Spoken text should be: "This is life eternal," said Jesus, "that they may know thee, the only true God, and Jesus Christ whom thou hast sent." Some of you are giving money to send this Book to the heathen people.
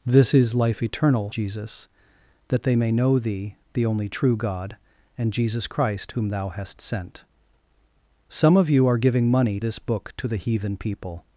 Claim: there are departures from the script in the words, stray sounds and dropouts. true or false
true